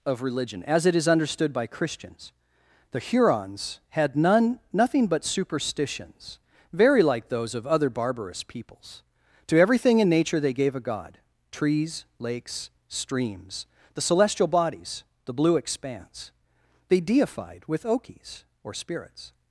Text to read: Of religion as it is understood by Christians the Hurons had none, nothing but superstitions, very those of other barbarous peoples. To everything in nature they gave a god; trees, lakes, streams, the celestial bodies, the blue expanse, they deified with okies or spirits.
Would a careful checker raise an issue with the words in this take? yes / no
yes